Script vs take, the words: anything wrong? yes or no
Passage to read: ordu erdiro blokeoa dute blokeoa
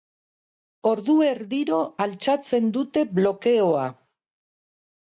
yes